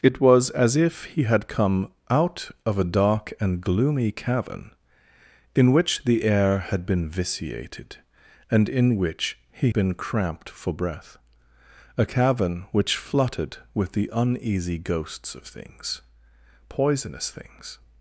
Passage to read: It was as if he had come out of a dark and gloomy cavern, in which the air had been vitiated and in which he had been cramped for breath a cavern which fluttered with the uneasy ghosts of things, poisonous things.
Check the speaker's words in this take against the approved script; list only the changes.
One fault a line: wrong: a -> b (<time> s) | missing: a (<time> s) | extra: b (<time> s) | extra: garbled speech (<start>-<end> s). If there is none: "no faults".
missing: had (9.7 s)